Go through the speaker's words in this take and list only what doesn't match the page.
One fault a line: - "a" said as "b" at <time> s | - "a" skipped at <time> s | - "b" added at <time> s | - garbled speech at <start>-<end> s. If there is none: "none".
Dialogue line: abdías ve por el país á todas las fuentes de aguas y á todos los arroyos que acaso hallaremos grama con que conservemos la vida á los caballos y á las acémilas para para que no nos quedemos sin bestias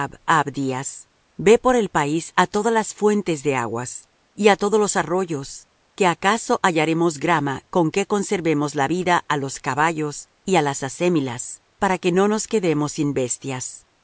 - "para" skipped at 12.0 s